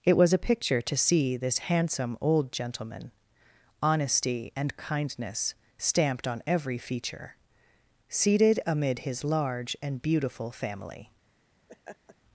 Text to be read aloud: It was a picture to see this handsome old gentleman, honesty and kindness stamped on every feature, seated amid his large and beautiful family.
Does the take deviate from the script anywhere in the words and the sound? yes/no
yes